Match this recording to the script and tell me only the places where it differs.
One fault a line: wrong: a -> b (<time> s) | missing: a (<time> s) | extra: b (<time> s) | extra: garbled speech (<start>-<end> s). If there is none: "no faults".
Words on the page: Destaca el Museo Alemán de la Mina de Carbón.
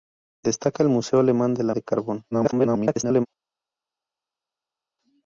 missing: Mina (1.8 s)
extra: garbled speech (2.3-3.3 s)